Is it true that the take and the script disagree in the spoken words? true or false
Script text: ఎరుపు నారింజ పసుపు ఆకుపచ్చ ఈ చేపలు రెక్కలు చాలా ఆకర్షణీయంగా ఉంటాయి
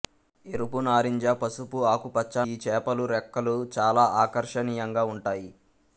false